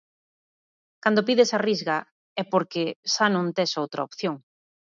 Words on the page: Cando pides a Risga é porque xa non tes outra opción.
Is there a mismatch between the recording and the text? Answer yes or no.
no